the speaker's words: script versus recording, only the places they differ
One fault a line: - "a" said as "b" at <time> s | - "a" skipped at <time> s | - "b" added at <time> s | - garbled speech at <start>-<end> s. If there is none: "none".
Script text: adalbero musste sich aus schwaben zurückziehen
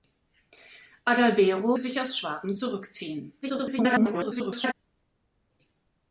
- "musste" skipped at 1.8 s
- garbled speech at 3.4-4.7 s